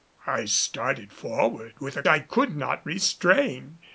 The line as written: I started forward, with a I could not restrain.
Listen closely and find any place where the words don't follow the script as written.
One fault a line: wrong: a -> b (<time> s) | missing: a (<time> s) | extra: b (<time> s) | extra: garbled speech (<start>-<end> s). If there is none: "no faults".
no faults